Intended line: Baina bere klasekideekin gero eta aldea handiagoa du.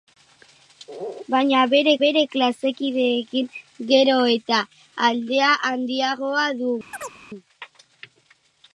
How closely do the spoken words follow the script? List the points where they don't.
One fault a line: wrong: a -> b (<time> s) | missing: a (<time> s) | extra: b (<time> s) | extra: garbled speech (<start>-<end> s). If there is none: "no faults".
extra: bere (2.0 s)